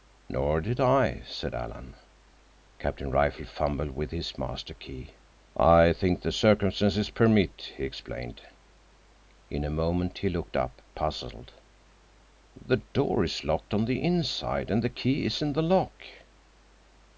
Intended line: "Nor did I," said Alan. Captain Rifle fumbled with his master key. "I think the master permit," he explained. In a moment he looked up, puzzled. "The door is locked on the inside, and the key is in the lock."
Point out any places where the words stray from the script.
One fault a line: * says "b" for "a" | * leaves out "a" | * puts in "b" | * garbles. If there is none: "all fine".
* says "circumstances" for "master"